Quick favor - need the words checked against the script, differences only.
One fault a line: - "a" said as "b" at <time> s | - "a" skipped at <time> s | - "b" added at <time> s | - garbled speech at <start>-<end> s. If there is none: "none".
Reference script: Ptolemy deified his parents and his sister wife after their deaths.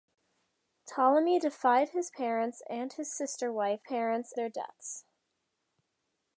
- "after" said as "parents" at 3.8 s